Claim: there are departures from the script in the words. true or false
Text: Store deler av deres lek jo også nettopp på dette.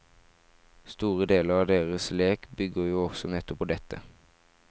true